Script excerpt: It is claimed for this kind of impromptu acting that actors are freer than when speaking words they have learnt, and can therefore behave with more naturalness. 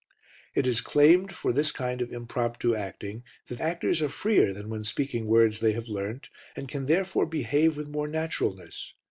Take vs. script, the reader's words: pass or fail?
pass